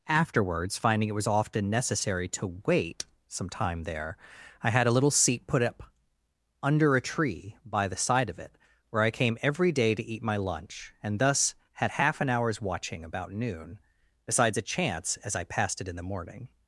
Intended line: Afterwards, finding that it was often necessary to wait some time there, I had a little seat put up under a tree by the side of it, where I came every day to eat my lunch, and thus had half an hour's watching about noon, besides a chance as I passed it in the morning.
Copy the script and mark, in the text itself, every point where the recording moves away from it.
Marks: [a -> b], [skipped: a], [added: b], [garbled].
Afterwards, finding [skipped: that] it was often necessary to wait some time there, I had a little seat put up under a tree by the side of it, where I came every day to eat my lunch, and thus had half an hour's watching about noon, besides a chance as I passed it in the morning.